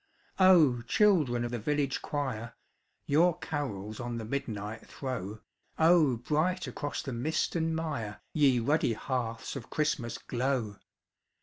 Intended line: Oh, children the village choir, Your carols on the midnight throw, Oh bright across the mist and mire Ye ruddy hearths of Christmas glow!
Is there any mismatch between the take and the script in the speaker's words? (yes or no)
no